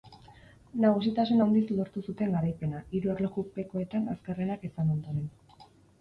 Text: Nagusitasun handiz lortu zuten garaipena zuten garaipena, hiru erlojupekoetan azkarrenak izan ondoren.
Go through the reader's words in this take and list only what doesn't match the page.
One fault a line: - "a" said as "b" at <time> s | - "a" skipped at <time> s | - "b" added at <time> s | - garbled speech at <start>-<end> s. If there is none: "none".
- "zuten garaipena" skipped at 2.8 s